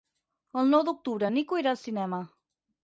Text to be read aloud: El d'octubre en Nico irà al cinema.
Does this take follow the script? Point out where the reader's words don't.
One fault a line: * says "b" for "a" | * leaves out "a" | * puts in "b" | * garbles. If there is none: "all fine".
* puts in "nou"